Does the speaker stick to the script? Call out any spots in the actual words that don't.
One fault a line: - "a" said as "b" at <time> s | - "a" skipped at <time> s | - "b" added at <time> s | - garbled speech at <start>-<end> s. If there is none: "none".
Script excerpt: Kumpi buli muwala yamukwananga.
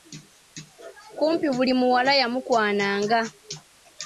none